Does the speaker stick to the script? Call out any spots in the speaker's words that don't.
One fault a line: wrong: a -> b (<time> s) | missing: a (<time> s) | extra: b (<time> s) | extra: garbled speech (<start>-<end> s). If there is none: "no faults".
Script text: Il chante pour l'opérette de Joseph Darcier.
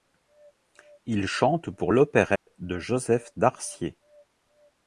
no faults